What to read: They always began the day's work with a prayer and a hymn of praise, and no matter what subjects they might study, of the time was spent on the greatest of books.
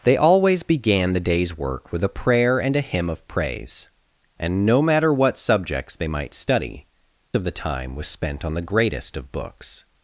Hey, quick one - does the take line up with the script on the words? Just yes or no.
yes